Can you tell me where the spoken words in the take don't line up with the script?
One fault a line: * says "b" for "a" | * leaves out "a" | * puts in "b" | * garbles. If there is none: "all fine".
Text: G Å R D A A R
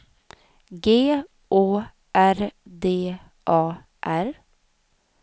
* leaves out "A"